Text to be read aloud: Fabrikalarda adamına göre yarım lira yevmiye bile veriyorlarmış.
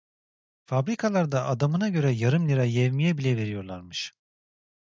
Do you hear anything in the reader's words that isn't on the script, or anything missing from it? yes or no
no